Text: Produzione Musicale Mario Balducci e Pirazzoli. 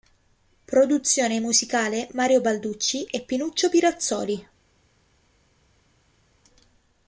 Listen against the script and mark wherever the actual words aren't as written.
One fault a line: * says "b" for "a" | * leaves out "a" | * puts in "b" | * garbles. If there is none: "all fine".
* puts in "Pinuccio"